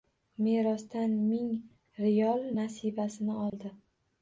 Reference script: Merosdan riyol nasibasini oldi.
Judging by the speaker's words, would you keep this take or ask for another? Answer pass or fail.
fail